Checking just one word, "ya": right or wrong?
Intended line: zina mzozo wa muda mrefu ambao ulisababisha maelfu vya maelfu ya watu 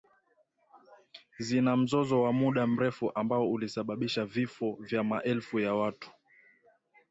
right